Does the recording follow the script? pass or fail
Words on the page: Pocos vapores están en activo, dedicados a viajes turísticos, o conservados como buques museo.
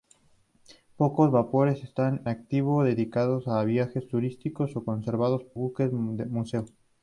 fail